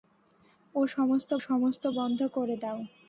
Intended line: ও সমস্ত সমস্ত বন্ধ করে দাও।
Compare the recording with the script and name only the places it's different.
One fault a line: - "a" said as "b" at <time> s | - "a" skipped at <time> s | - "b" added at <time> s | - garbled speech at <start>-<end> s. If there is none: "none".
none